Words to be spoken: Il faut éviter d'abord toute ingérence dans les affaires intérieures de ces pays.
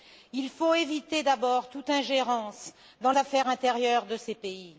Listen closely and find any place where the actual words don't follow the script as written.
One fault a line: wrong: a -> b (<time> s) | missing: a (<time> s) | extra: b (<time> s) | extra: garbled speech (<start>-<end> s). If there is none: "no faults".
missing: les (3.1 s)